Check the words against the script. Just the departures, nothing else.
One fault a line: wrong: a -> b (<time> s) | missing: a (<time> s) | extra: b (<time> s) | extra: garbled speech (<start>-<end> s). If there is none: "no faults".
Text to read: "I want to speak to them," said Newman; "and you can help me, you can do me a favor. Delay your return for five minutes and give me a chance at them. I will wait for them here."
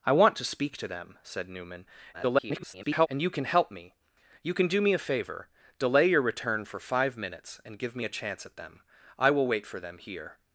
extra: garbled speech (2.1-3.1 s)